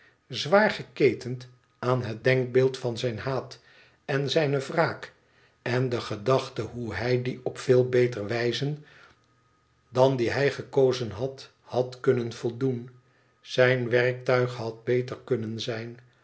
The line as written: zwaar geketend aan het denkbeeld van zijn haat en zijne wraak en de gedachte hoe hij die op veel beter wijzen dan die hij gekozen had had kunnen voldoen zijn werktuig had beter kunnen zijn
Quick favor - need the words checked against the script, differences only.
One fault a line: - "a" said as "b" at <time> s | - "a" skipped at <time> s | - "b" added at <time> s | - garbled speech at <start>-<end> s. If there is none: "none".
none